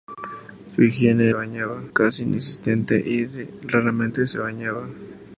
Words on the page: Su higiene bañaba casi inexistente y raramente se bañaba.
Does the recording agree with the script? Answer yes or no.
yes